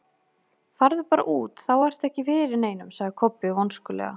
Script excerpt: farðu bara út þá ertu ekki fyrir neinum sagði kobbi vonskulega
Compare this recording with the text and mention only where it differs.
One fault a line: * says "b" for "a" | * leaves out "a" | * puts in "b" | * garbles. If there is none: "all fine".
all fine